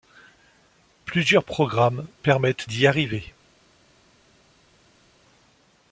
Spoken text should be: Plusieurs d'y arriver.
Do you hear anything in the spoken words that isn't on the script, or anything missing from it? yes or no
yes